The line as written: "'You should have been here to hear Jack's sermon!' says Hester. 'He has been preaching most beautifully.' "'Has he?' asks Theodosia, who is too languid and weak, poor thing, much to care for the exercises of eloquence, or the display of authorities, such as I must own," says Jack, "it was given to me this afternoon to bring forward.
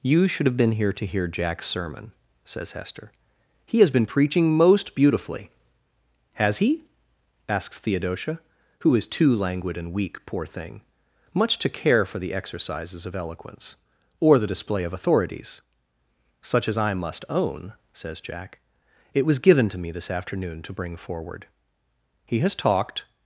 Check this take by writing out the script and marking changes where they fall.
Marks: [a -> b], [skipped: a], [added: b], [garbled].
"'You should have been here to hear Jack's sermon!' says Hester. 'He has been preaching most beautifully.' "'Has he?' asks Theodosia, who is too languid and weak, poor thing, much to care for the exercises of eloquence, or the display of authorities, such as I must own," says Jack, "it was given to me this afternoon to bring forward. [added: He has talked]